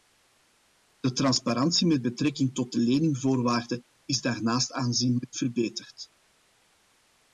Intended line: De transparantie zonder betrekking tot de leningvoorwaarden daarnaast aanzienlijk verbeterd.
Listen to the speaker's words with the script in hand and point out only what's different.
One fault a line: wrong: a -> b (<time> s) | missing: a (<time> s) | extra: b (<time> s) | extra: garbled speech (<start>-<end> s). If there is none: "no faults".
wrong: zonder -> met (1.9 s)
extra: is (4.0 s)